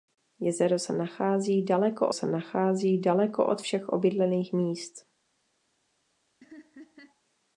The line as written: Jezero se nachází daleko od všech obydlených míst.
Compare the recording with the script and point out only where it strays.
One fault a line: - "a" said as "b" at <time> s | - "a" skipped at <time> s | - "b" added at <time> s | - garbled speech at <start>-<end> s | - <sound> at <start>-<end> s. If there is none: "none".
- "se nachází daleko" added at 2.1 s
- laugh at 6.4-7.2 s